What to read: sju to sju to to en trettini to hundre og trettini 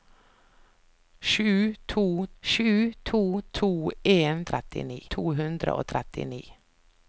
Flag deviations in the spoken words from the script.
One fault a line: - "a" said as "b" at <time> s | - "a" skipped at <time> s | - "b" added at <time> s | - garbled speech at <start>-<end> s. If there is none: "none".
none